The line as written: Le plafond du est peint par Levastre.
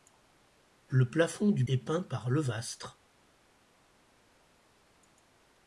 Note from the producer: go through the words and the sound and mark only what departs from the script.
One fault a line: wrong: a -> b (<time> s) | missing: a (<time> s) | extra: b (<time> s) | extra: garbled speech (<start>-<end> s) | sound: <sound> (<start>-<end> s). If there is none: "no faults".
no faults